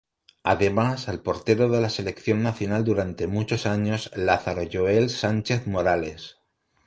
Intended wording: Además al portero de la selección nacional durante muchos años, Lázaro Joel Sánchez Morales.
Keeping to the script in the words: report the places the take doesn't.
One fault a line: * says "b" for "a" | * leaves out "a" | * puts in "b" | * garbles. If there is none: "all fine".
all fine